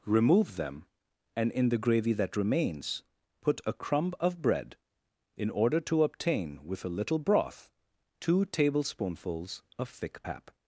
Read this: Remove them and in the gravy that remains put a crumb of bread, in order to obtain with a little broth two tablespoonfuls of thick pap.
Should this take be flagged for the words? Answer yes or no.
no